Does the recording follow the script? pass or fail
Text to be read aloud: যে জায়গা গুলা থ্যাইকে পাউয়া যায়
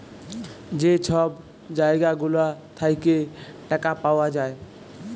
fail